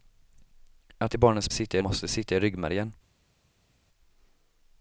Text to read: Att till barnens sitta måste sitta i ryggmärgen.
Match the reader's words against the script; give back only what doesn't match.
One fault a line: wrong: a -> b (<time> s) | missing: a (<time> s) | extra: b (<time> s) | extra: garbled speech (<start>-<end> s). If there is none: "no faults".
no faults